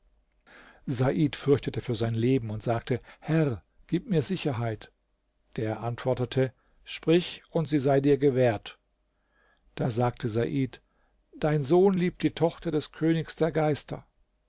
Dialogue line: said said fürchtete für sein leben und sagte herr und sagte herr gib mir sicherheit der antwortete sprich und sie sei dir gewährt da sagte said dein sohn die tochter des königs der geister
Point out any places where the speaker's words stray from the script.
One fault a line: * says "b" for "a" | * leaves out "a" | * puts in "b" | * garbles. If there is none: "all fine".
* leaves out "said"
* leaves out "und sagte herr"
* puts in "liebt"